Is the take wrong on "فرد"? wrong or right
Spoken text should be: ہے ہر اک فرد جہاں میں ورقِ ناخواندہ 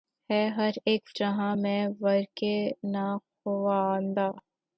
wrong